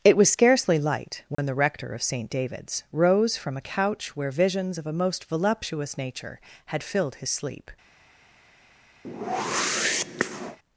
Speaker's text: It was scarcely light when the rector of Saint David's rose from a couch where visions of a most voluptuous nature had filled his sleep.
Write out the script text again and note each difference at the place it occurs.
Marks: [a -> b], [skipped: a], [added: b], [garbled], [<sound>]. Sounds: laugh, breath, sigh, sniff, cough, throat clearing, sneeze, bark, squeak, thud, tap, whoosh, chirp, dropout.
It was scarcely light when [dropout] the rector of Saint David's rose from a couch where visions of a most voluptuous nature had filled his sleep. [whoosh]